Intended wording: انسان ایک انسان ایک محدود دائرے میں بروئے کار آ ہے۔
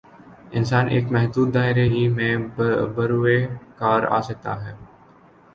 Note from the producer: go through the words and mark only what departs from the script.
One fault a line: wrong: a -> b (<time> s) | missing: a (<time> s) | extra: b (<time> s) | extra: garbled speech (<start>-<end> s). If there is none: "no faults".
missing: انسان ایک (1.1 s)
extra: ہی (1.9 s)
extra: سکتا (4.2 s)